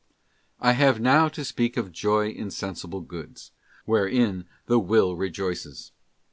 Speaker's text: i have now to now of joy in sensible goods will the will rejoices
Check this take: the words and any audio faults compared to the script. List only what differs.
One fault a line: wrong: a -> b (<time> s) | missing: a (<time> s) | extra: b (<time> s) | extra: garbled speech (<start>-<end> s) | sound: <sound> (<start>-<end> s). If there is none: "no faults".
wrong: now -> speak (1.4 s)
wrong: will -> wherein (3.9 s)